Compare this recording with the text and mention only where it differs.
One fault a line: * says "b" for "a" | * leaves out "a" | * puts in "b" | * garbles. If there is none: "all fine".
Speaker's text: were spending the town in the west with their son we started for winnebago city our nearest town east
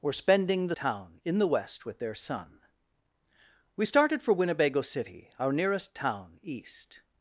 all fine